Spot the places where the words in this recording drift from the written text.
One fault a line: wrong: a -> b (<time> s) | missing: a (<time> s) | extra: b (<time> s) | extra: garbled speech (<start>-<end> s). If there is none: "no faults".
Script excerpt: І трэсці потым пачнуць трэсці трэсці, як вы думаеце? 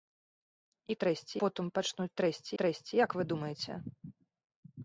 no faults